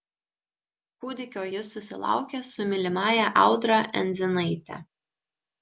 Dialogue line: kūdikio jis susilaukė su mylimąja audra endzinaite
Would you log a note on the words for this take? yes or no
no